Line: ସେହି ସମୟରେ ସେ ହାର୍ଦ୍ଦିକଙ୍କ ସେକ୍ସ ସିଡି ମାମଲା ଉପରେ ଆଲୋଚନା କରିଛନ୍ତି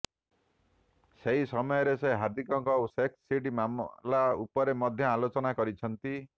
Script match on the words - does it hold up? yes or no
no